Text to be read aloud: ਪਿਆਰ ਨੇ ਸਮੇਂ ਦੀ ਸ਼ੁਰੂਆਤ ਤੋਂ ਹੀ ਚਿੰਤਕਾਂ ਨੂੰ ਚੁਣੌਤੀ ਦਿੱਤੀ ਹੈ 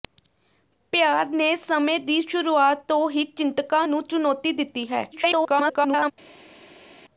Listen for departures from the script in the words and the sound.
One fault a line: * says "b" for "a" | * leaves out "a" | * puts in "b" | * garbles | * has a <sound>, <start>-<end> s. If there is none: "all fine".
* garbles